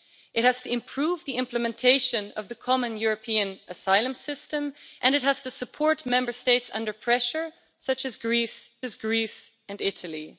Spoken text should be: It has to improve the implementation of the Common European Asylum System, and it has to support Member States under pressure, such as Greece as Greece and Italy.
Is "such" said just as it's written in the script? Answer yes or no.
yes